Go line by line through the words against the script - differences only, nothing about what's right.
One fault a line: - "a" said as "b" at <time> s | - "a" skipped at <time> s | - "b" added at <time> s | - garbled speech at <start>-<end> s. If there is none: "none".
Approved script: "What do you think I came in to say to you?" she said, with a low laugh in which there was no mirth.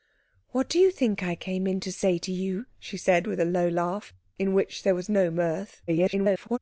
- garbled speech at 5.9-6.6 s